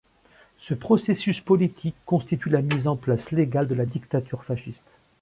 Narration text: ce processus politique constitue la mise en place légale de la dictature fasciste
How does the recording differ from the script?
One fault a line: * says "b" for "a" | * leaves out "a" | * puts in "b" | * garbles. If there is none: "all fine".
all fine